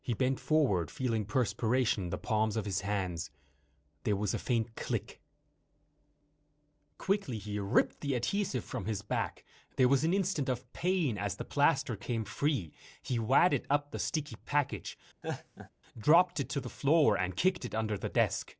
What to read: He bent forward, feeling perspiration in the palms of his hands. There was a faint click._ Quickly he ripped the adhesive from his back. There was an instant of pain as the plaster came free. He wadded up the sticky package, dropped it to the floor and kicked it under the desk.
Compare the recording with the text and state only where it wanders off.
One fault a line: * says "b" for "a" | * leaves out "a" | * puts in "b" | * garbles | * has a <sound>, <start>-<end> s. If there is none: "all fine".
* has a laugh, 15.2-15.7 s